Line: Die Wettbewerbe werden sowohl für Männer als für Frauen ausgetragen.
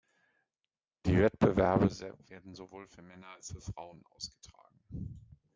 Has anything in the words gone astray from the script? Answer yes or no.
no